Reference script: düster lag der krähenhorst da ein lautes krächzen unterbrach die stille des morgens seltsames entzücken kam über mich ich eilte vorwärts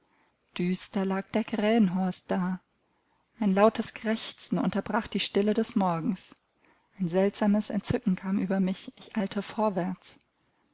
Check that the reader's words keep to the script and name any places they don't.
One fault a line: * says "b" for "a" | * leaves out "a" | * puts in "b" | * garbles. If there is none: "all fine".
* puts in "ein"